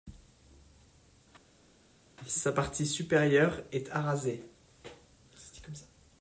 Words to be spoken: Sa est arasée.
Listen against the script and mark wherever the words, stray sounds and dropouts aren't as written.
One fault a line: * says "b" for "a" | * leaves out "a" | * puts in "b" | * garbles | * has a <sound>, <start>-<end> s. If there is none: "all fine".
* puts in "partie supérieure"